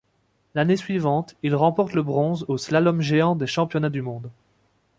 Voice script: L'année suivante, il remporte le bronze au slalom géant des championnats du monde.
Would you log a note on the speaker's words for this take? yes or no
no